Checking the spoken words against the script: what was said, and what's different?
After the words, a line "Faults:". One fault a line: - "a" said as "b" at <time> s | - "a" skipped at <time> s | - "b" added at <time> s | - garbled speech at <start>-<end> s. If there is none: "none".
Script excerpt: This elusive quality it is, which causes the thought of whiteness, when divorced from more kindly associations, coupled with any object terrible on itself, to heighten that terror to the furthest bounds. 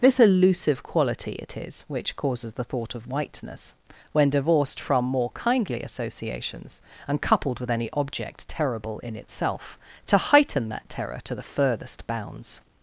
This elusive quality it is, which causes the thought of whiteness, when divorced from more kindly associations, and coupled with any object terrible in itself, to heighten that terror to the furthest bounds.
Faults:
- "and" added at 7.1 s
- "on" said as "in" at 9.0 s